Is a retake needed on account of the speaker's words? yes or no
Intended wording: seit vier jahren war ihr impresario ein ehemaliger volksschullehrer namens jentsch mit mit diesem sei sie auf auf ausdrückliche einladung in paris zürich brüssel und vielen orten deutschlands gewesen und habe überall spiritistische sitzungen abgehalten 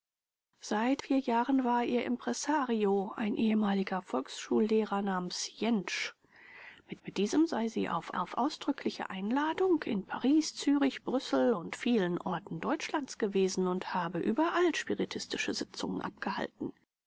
no